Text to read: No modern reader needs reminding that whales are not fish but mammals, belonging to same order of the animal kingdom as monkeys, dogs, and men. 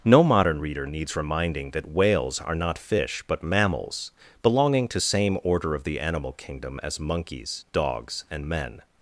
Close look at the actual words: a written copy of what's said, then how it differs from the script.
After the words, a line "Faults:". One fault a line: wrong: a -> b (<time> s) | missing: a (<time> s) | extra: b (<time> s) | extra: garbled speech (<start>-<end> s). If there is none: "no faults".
No modern reader needs reminding that whales are not fish but mammals, belonging to same order of the animal kingdom as monkeys, dogs, and men.
Faults:
no faults